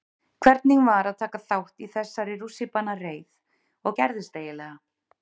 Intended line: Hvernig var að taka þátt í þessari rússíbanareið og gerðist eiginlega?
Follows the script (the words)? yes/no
yes